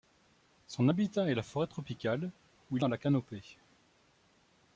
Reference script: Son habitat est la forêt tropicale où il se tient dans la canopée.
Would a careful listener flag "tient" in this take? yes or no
yes